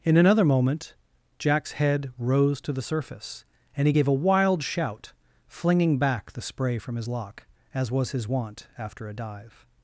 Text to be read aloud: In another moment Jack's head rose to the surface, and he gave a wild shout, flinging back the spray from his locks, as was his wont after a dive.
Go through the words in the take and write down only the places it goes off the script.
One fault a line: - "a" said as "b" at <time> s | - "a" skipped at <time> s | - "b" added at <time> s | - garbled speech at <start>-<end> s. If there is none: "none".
- "locks" said as "lock" at 7.1 s